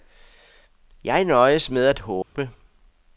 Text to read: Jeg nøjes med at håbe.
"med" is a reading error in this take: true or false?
false